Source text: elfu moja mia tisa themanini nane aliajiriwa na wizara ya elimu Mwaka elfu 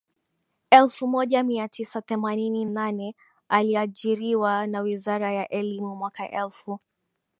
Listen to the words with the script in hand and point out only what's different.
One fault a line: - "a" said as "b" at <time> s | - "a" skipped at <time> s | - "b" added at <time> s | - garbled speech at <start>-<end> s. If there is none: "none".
none